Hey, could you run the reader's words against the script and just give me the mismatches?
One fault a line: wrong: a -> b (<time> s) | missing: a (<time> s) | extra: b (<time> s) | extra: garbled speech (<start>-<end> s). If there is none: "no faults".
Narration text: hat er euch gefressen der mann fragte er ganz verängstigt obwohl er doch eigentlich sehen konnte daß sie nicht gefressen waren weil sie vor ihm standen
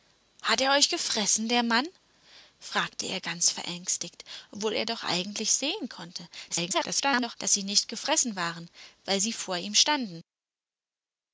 extra: garbled speech (6.5-7.4 s)